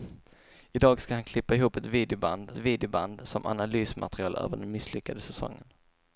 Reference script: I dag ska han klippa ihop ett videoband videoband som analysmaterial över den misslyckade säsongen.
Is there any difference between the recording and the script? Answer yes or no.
no